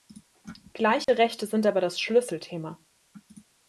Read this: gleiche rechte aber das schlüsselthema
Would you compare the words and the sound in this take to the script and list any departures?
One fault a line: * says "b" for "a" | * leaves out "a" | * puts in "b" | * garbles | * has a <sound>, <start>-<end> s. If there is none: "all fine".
* has a dropout, 1.0-1.1 s
* puts in "sind"